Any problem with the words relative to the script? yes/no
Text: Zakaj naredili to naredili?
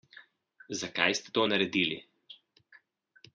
yes